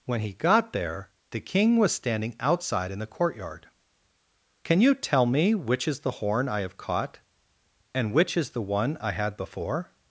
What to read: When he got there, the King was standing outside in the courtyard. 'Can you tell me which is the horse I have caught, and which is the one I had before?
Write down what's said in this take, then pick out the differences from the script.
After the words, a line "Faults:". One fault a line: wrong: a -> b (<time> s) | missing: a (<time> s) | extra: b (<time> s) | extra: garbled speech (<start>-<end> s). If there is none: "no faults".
When he got there, the King was standing outside in the courtyard. 'Can you tell me which is the horn I have caught, and which is the one I had before?
Faults:
wrong: horse -> horn (6.1 s)